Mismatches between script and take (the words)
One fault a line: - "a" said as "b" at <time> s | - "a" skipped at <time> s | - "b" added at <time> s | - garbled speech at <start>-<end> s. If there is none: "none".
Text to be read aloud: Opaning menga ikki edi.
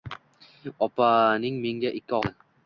none